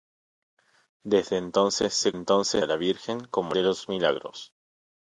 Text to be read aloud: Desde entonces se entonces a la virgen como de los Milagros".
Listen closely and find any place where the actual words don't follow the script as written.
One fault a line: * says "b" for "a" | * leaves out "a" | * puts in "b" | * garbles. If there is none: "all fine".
all fine